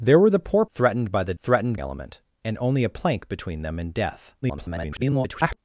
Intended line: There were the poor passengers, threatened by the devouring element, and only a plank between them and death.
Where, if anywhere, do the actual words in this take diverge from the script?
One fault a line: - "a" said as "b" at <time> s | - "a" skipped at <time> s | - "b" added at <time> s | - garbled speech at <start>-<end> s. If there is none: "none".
- "passengers" skipped at 0.7 s
- "devouring" said as "threatened" at 1.4 s
- garbled speech at 4.4-5.6 s